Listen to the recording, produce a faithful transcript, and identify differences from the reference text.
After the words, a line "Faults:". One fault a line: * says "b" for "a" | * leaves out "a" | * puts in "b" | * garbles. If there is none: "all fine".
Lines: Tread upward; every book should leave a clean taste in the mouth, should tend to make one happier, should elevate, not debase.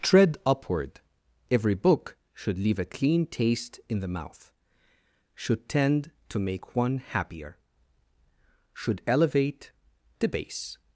Tread upward; every book should leave a clean taste in the mouth, should tend to make one happier, should elevate, debase.
Faults:
* leaves out "not"